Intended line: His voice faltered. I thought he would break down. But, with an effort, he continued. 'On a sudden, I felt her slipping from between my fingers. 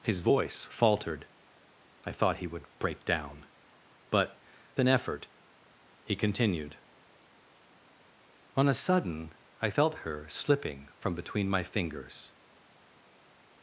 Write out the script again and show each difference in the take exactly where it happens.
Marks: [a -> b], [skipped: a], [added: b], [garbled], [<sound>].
His voice faltered. I thought he would break down. But, [skipped: with] an effort, he continued. 'On a sudden, I felt her slipping from between my fingers.